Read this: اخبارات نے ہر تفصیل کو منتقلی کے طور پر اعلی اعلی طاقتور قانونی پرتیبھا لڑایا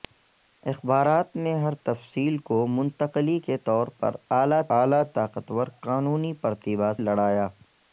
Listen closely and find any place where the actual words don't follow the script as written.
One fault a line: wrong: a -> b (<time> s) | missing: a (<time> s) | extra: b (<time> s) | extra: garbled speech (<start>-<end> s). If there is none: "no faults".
no faults